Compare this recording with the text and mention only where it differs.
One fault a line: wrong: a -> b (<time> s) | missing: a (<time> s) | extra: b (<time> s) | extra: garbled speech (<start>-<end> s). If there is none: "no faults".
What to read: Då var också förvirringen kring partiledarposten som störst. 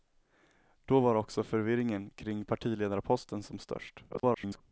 extra: garbled speech (4.1-4.6 s)